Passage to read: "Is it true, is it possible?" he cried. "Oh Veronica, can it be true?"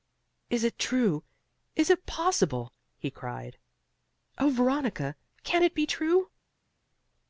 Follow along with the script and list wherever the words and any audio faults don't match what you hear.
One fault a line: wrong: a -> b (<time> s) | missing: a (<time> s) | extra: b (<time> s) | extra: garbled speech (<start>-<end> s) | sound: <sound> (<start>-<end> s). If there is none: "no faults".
no faults